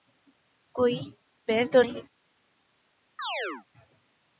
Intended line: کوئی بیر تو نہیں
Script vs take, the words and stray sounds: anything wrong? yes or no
yes